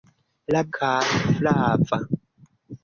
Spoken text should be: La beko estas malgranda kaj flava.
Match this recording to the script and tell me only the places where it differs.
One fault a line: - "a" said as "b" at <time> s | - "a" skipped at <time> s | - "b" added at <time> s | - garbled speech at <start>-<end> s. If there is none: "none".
- "beko estas malgranda" skipped at 0.6 s